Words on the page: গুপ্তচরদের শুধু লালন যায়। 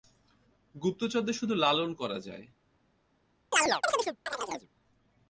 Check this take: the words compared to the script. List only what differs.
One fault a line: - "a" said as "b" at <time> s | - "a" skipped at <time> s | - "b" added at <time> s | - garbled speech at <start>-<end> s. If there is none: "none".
- "করা" added at 1.9 s